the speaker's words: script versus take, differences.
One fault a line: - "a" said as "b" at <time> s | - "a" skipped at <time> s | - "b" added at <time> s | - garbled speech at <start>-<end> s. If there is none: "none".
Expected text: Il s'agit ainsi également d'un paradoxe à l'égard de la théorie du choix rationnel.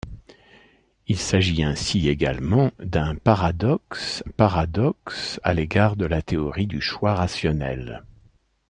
- "paradoxe" added at 4.3 s